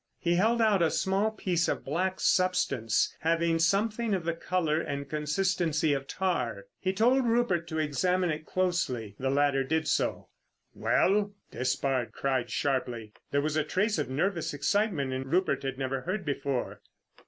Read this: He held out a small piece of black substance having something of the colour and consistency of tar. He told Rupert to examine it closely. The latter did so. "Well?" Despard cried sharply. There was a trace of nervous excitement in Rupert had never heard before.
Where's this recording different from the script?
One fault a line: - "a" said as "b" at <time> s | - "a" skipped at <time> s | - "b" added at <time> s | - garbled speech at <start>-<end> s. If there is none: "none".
none